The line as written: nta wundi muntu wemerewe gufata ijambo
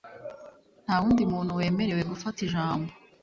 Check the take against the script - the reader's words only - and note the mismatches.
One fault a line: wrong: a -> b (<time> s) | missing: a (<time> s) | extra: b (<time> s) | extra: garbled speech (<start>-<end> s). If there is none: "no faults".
no faults